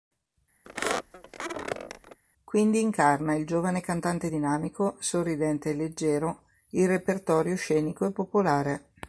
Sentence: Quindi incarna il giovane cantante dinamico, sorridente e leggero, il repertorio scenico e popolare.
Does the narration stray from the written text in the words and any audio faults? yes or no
yes